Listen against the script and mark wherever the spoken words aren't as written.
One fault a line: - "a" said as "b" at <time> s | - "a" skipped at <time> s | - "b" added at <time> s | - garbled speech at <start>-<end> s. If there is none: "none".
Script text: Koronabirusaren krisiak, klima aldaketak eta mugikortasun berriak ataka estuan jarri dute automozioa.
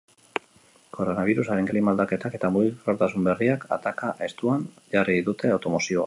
- "krisiak" skipped at 1.7 s